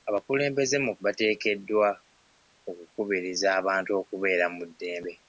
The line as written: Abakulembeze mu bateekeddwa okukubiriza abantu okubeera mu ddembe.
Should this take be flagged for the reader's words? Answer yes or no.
no